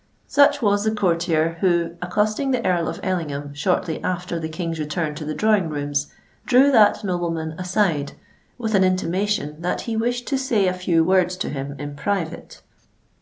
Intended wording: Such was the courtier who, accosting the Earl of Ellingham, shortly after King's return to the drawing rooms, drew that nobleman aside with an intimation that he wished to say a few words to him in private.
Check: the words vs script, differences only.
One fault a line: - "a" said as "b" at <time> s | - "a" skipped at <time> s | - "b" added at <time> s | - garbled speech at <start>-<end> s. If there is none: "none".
- "the" added at 4.4 s